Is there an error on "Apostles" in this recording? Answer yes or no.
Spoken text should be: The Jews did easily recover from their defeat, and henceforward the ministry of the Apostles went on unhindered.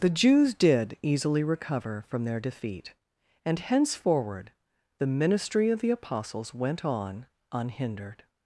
no